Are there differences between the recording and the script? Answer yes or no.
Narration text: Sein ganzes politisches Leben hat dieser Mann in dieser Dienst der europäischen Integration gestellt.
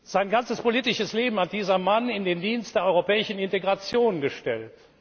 yes